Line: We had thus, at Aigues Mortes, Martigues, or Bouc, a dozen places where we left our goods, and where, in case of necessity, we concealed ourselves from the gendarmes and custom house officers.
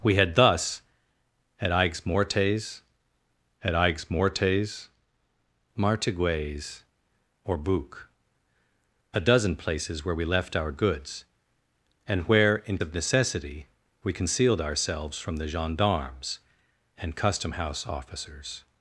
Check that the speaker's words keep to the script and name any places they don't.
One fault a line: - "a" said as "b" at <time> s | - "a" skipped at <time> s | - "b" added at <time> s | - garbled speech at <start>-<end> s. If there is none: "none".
- "at Aigues Mortes" added at 3.6 s
- "case" skipped at 12.8 s